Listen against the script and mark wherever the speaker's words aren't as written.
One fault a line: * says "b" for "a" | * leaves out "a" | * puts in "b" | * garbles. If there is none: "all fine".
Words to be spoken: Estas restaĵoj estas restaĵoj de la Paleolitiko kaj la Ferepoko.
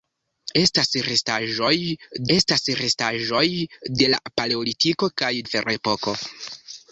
all fine